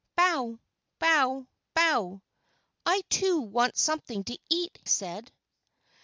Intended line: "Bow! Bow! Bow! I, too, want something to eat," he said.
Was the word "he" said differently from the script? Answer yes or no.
yes